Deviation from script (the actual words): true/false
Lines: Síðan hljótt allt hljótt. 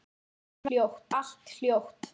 false